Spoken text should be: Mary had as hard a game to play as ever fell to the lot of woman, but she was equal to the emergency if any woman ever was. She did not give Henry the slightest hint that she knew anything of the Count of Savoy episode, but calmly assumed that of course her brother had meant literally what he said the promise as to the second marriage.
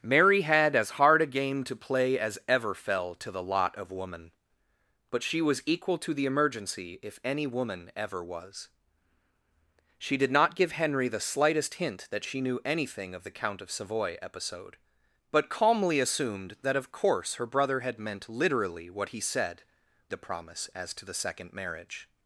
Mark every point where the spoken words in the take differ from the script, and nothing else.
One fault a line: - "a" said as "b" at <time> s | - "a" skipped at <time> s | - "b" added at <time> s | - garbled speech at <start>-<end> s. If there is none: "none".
none